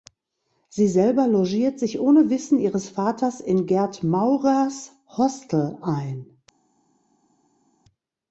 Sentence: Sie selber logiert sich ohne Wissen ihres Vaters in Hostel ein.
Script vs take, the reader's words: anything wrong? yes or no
yes